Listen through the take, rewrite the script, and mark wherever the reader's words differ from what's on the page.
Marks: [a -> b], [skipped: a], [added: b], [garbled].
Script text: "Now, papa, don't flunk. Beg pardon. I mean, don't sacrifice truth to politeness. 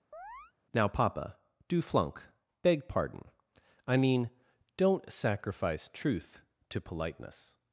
"Now, papa, [don't -> do] flunk. Beg pardon. I mean, don't sacrifice truth to politeness.